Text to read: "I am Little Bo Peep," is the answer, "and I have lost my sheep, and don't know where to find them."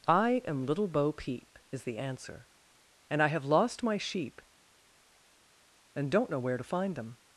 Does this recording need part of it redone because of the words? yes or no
no